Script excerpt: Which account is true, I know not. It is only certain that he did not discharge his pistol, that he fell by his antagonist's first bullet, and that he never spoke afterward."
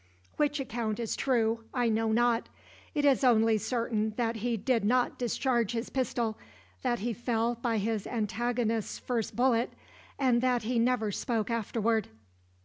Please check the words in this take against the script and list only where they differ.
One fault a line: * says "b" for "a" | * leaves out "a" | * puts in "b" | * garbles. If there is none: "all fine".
all fine